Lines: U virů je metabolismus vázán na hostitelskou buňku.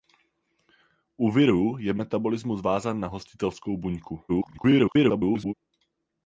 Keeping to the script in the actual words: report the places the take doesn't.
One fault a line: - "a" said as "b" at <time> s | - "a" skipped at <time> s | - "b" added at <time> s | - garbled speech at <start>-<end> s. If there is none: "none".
- garbled speech at 4.3-5.5 s